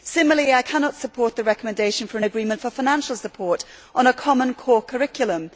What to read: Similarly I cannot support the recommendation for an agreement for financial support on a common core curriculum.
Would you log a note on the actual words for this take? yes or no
no